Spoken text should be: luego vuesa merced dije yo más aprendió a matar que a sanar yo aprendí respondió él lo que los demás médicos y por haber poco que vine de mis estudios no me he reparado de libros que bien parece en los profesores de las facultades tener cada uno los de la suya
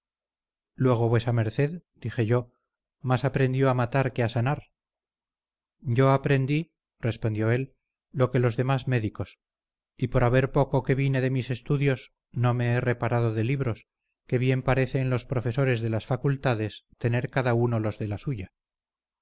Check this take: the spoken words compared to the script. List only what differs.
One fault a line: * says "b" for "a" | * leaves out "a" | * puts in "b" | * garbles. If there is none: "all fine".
all fine